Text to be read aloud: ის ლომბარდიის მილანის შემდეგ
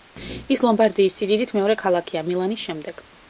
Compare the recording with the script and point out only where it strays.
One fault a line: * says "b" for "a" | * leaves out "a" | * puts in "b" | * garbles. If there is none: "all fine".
* puts in "სიდიდით მეორე ქალაქია"